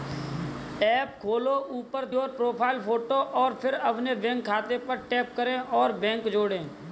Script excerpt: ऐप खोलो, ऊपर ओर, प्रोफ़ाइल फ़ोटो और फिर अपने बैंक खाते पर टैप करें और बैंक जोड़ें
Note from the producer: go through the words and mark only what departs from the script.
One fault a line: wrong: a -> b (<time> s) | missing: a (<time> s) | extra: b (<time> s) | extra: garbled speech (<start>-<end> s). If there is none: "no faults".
no faults